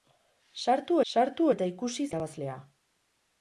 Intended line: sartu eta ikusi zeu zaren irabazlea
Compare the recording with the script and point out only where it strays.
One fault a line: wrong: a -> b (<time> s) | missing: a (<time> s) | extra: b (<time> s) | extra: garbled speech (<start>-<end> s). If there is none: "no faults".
extra: sartu (1.1 s)
missing: zeu zaren (2.1 s)